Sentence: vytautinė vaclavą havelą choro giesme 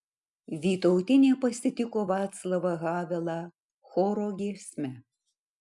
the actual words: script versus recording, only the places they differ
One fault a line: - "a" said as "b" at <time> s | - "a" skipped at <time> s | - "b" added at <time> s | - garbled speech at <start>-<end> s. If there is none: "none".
- "pasitiko" added at 1.4 s